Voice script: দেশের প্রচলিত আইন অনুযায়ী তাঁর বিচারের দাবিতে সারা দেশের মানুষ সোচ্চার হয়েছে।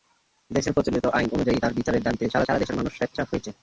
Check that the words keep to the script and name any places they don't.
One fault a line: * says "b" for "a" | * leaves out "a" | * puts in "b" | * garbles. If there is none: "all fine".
* puts in "সারা"